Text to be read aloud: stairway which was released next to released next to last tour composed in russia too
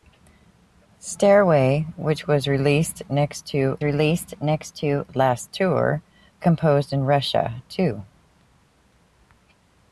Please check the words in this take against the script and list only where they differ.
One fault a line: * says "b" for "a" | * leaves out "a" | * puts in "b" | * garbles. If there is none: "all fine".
all fine